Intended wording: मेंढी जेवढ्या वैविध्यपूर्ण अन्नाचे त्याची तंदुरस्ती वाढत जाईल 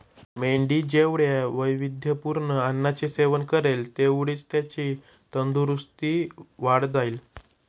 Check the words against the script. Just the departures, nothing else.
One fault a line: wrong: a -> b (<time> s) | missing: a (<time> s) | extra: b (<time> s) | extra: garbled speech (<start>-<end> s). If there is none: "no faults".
extra: सेवन करेल तेवढीच (3.1 s)